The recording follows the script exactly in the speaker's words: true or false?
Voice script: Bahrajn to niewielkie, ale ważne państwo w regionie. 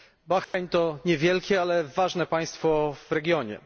true